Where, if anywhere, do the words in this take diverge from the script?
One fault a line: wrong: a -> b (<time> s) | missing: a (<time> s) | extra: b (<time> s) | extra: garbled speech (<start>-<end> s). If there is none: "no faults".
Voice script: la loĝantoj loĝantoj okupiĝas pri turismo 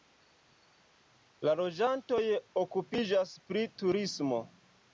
missing: loĝantoj (2.2 s)